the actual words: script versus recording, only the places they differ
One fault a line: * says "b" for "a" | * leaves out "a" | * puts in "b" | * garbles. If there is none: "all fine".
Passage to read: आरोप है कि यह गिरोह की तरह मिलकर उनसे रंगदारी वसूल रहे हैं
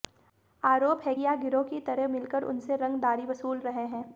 * leaves out "कि"